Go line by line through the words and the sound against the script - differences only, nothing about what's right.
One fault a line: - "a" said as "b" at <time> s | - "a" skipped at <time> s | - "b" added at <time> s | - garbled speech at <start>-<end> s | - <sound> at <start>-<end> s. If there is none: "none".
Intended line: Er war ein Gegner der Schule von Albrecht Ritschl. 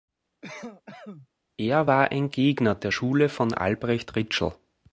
- cough at 0.4-1.3 s